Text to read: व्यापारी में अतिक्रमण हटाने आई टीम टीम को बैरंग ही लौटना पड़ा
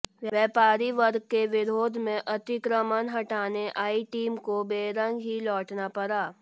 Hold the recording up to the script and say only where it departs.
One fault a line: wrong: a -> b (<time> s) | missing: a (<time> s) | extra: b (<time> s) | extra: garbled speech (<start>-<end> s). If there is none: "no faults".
extra: वर्ग के विरोध (0.9 s)
missing: टीम (4.4 s)